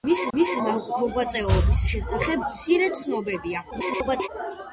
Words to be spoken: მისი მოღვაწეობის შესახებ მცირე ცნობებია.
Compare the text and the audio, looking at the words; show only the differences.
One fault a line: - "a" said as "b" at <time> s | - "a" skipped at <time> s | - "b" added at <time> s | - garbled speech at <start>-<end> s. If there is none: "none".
- "მისი" added at 0.4 s
- garbled speech at 3.7-4.3 s